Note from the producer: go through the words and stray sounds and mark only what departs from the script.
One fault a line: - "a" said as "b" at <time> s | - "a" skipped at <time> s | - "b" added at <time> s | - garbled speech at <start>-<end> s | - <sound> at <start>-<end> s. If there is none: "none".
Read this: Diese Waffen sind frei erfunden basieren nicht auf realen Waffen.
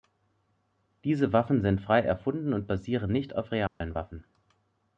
- "und" added at 2.5 s
- dropout at 3.7-3.8 s